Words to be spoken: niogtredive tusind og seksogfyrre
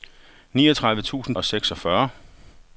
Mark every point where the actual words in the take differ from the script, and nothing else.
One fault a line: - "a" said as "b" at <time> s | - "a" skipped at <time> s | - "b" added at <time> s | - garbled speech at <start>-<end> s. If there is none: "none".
none